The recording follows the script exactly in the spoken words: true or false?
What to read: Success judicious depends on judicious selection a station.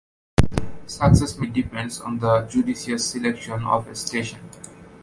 false